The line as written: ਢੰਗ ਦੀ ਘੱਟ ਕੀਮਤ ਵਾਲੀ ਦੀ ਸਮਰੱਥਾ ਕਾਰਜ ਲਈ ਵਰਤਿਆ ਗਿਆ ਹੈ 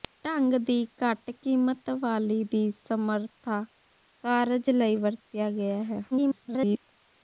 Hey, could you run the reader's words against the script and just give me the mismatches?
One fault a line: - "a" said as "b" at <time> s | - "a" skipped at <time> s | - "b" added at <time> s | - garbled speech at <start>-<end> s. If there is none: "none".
- garbled speech at 6.1-6.8 s